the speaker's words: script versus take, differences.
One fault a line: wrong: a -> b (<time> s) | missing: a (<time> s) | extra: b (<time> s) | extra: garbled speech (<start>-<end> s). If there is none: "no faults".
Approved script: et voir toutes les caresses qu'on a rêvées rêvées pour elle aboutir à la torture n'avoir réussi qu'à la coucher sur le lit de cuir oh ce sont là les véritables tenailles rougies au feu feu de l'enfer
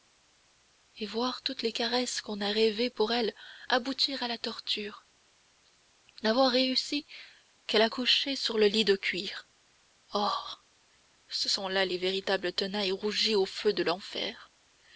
missing: rêvées (2.9 s)
missing: feu (13.7 s)